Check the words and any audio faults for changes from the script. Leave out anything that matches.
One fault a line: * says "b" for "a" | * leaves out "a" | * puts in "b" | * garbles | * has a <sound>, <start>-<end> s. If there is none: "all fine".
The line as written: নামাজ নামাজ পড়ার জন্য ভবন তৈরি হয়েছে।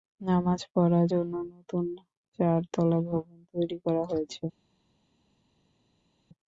* leaves out "নামাজ"
* puts in "নতুন চারতলা"
* puts in "করা"